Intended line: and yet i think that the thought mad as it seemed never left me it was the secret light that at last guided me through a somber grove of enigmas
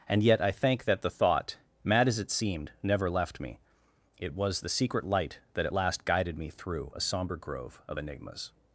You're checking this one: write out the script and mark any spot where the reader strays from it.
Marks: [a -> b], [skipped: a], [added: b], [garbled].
and yet i [think -> thank] that the thought mad as it seemed never left me it was the secret light that at last guided me through a somber grove of enigmas